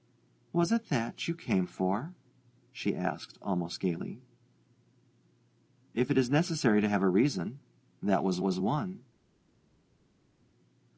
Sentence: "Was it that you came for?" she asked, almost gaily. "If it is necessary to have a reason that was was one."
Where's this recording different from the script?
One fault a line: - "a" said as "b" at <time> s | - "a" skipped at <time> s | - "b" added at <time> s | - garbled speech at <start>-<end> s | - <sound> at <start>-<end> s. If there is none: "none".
none